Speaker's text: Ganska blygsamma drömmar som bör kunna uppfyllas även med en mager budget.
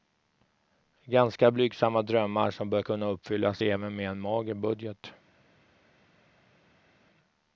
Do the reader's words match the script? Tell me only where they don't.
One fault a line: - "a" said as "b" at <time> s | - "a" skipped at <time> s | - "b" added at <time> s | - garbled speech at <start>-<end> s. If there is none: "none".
none